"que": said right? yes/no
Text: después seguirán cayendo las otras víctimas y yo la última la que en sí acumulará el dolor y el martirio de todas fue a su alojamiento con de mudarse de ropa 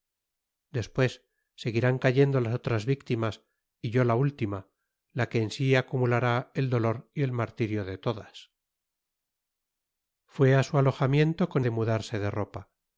yes